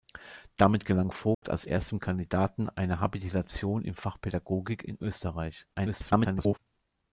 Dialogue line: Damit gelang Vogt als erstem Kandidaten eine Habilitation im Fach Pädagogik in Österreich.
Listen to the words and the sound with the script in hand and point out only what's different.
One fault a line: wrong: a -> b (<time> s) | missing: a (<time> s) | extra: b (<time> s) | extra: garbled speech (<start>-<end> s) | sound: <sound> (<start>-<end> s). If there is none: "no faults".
sound: dropout (1.3-1.4 s)
extra: garbled speech (5.7-6.6 s)